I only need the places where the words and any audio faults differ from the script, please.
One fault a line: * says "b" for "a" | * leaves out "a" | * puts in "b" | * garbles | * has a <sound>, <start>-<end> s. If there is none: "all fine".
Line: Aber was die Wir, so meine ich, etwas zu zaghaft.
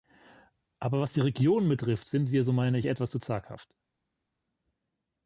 * puts in "Regionen betrifft sind"